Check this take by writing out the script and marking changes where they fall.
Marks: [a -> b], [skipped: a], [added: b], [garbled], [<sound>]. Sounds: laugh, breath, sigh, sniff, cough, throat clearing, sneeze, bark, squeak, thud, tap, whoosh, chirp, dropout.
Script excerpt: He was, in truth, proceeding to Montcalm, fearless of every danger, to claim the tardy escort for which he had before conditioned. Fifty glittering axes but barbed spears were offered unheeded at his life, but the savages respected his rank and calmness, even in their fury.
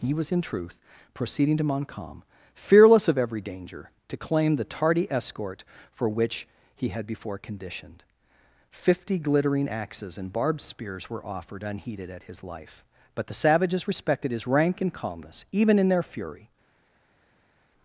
He was, in truth, proceeding to Montcalm, fearless of every danger, to claim the tardy escort for which he had before conditioned. Fifty glittering axes [but -> and] barbed spears were offered unheeded at his life, but the savages respected his rank and calmness, even in their fury.